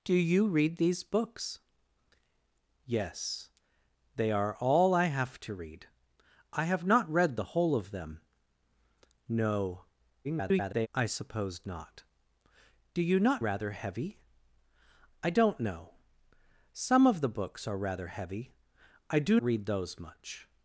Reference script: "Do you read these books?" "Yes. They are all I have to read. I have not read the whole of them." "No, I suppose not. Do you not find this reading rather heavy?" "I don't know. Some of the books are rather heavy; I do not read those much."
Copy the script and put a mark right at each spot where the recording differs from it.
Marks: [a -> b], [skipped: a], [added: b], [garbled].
"Do you read these books?" "Yes. They are all I have to read. I have not read the whole of them." "No, [garbled] I suppose not. Do you not [skipped: find this reading] rather heavy?" "I don't know. Some of the books are rather heavy; I do [skipped: not] read those much."